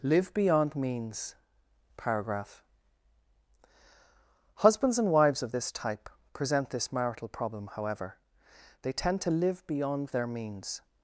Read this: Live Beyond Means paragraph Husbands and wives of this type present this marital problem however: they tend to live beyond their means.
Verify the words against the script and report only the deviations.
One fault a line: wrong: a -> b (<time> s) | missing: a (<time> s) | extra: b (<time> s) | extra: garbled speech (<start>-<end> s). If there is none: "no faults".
no faults